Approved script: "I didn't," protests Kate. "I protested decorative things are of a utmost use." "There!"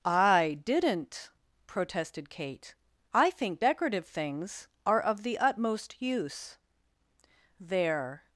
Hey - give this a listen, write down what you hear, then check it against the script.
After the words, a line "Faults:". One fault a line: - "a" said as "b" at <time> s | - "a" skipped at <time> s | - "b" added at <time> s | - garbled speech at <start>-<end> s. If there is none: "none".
"I didn't," protested Kate. "I think decorative things are of the utmost use." "There!"
Faults:
- "protests" said as "protested" at 1.7 s
- "protested" said as "think" at 3.3 s
- "a" said as "the" at 5.2 s